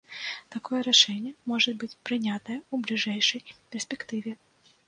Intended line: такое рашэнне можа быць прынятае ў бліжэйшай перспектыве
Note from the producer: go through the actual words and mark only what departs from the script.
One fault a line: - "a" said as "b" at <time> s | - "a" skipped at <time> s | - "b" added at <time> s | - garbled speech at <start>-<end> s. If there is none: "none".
none